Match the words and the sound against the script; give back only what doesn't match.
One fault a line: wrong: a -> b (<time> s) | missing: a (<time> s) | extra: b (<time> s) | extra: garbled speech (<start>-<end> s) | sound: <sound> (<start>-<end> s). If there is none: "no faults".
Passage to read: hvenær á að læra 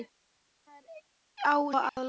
sound: dropout (1.9-2.0 s)